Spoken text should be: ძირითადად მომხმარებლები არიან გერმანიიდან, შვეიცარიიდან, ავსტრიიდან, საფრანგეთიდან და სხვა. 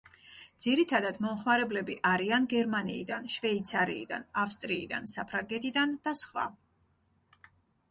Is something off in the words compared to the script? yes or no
no